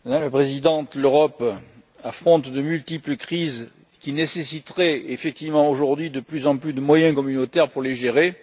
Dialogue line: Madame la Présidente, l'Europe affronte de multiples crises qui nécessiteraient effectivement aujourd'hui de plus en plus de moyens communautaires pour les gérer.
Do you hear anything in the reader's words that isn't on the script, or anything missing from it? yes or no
no